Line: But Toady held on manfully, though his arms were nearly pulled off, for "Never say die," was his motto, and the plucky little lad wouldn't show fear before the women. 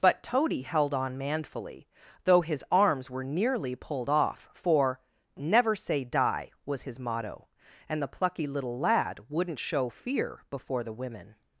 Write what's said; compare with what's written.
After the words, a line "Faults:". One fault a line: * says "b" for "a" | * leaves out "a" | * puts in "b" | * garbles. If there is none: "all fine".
But Toady held on manfully, though his arms were nearly pulled off, for "Never say die," was his motto, and the plucky little lad wouldn't show fear before the women.
Faults:
all fine